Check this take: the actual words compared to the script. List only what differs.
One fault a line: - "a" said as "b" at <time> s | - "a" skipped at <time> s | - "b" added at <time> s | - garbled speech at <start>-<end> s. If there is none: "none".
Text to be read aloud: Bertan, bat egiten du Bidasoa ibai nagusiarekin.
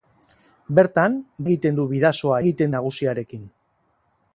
- "bat" skipped at 1.2 s
- "ibai" said as "egiten" at 2.4 s